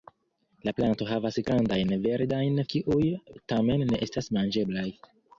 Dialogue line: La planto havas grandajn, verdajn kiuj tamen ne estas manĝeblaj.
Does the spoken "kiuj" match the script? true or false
true